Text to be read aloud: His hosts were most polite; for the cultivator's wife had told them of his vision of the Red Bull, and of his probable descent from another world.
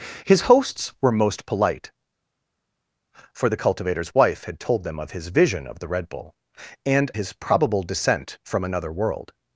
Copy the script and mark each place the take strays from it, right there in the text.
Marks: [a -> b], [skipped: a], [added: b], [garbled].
His hosts were most polite; for the cultivator's wife had told them of his vision of the Red Bull, and [skipped: of] his probable descent from another world.